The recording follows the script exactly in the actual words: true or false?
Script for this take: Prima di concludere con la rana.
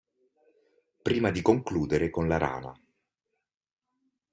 true